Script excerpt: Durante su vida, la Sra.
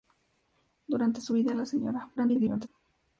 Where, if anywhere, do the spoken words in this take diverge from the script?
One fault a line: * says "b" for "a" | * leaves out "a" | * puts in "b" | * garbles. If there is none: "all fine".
* garbles